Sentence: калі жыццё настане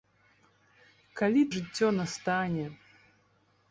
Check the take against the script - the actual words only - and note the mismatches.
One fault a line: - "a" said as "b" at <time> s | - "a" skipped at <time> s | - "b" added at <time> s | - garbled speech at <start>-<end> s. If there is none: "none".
none